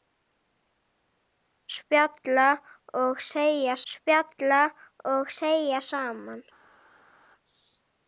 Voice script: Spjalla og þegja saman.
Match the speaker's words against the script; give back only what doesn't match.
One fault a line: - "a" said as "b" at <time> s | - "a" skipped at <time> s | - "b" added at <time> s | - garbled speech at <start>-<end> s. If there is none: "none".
- "spjalla og þegja" added at 3.9 s